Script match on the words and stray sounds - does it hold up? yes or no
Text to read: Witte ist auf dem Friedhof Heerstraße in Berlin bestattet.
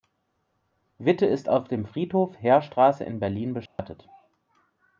no